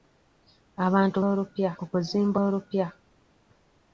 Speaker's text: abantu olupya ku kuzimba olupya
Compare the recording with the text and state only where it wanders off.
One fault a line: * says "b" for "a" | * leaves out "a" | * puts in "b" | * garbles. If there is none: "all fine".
all fine